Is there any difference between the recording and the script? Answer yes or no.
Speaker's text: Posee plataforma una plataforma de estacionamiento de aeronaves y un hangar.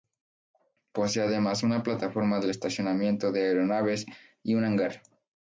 yes